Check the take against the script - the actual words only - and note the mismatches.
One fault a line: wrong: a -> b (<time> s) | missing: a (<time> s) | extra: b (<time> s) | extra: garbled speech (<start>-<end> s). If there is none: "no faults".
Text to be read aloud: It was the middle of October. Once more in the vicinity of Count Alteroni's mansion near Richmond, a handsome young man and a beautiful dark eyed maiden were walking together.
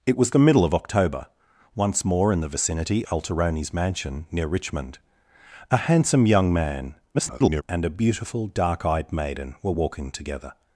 missing: of Count (3.0 s)
extra: garbled speech (7.1-7.6 s)